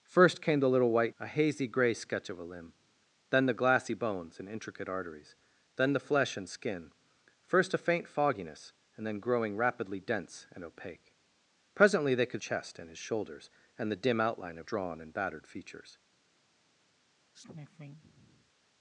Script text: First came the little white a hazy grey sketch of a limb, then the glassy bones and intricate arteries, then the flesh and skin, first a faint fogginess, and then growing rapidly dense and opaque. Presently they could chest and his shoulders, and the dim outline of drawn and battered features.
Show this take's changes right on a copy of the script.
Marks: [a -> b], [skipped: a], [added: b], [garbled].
First came the little white a hazy grey sketch of a limb, then the glassy bones and intricate arteries, then the flesh and skin, first a faint fogginess, and then growing rapidly dense and opaque. Presently they could chest and his shoulders, and the dim outline of drawn and battered features.